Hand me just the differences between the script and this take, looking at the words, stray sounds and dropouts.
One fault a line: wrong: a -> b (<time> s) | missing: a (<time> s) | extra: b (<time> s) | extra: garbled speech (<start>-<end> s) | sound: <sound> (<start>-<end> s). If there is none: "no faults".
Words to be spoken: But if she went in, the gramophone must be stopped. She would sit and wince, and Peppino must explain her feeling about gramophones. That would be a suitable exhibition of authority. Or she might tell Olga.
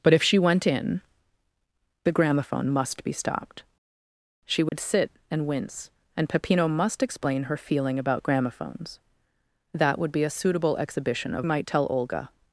sound: dropout (4.7-4.7 s)
missing: authority Or she (11.5 s)